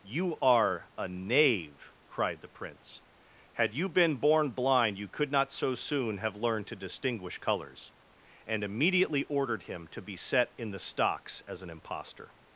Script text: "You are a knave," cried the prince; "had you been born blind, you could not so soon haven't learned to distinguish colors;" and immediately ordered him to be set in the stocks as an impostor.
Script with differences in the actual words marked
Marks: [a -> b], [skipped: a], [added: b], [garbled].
"You are a knave," cried the prince; "had you been born blind, you could not so soon [haven't -> have] learned to distinguish colors;" and immediately ordered him to be set in the stocks as an impostor.